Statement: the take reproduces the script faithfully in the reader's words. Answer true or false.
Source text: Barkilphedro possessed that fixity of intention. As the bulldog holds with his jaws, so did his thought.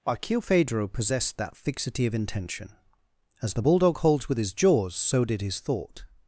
true